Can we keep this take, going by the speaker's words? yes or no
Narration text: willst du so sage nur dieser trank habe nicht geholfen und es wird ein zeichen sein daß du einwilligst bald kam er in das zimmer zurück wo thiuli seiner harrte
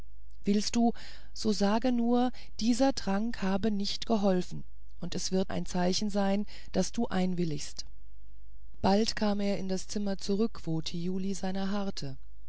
yes